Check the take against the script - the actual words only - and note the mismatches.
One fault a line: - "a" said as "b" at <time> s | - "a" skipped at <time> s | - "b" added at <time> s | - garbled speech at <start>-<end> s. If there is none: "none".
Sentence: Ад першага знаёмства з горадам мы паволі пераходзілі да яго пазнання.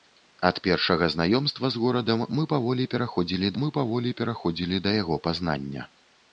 - "мы паволі пераходзілі" added at 3.6 s